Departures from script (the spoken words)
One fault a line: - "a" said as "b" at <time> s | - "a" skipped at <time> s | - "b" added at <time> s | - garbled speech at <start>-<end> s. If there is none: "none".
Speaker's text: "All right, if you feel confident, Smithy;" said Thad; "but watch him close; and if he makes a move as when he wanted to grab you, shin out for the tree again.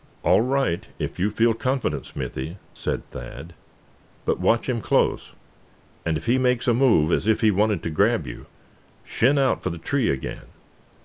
- "when" said as "if" at 7.3 s